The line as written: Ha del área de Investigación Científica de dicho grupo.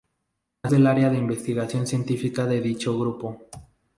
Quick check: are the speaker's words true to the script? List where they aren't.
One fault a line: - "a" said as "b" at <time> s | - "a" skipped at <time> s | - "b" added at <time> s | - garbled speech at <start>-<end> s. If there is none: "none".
none